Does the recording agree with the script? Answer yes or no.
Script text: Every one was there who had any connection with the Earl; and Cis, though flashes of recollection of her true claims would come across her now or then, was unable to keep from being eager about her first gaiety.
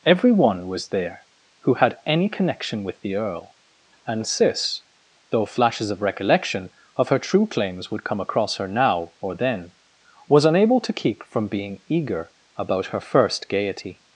yes